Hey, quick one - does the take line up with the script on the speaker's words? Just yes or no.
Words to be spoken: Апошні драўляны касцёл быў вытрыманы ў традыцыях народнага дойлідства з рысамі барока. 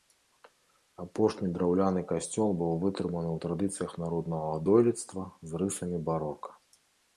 yes